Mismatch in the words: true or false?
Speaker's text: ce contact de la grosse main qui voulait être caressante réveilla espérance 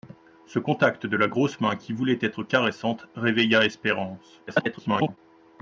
true